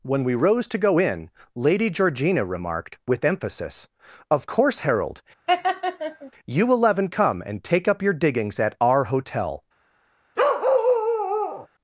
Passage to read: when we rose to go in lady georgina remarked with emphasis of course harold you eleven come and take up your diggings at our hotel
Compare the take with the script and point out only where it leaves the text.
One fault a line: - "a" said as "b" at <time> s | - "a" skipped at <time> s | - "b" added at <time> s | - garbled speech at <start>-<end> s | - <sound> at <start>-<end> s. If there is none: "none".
- laugh at 5.5-6.3 s
- bark at 10.4-11.7 s